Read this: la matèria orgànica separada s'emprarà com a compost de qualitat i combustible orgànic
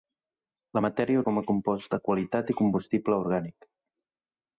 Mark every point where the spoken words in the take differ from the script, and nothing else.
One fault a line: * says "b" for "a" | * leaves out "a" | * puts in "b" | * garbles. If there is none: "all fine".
* leaves out "orgànica separada s'emprarà"